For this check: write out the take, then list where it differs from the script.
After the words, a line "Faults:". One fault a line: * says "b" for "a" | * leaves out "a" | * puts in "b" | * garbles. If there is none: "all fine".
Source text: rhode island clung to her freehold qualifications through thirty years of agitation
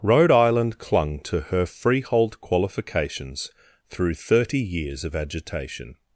rhode island clung to her freehold qualifications through thirty years of agitation
Faults:
all fine